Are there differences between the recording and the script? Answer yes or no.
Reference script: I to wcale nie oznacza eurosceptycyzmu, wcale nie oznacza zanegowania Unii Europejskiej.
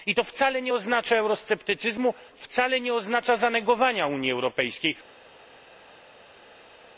no